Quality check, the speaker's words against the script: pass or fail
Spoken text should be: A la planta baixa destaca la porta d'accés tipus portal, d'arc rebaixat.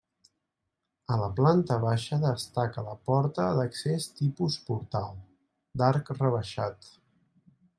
pass